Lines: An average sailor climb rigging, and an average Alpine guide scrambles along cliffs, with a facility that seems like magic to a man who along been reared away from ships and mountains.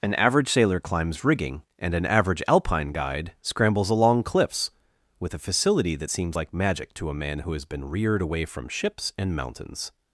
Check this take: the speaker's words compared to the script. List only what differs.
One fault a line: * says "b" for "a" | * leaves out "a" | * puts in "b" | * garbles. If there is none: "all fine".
* says "climbs" for "climb"
* says "has" for "along"